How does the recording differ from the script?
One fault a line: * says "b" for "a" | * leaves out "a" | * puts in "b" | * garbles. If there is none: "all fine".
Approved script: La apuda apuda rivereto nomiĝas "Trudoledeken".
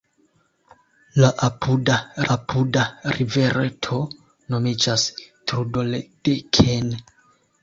all fine